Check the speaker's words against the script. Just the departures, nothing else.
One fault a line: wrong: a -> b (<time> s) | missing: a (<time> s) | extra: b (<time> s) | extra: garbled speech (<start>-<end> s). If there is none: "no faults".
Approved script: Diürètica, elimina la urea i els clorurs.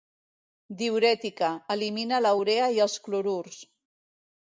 no faults